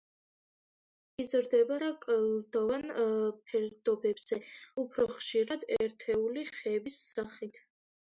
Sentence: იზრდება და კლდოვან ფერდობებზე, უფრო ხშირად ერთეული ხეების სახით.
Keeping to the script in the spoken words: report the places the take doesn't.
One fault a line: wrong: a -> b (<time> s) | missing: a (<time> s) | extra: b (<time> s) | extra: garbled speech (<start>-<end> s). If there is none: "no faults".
no faults